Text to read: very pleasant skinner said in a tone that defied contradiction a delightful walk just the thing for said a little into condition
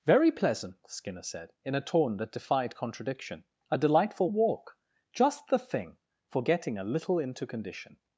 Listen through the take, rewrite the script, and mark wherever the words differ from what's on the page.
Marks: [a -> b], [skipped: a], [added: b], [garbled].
very pleasant skinner said in a tone that defied contradiction a delightful walk just the thing for [said -> getting] a little into condition